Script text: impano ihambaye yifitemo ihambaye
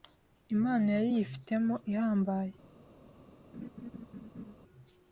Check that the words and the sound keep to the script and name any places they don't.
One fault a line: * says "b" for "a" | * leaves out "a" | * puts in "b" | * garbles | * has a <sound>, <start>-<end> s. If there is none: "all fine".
* says "yari" for "ihambaye"
* has a laugh, 3.5-4.5 s